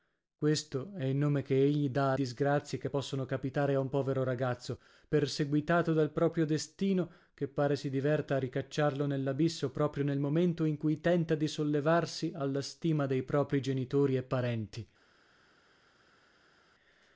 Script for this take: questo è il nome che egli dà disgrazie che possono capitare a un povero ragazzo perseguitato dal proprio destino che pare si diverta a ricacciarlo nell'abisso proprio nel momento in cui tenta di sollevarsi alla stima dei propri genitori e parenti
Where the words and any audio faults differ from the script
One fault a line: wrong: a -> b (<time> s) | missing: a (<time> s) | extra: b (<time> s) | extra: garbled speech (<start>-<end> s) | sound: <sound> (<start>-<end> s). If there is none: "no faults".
no faults